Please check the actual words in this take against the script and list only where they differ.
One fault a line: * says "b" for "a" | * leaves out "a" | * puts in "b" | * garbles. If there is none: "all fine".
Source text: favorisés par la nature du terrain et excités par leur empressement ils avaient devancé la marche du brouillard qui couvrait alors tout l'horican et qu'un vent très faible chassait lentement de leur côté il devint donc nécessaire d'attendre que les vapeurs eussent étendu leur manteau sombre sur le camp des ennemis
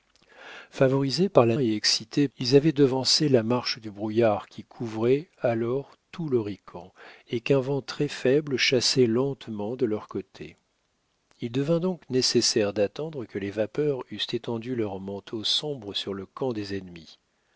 * leaves out "nature du terrain"
* leaves out "par leur empressement"